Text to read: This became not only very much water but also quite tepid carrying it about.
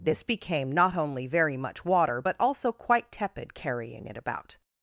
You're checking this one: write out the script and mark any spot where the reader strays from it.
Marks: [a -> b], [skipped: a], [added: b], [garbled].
This became not only very much water but also quite tepid carrying it about.